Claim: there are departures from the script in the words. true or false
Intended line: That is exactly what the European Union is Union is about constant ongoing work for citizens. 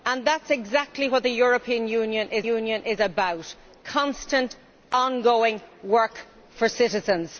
false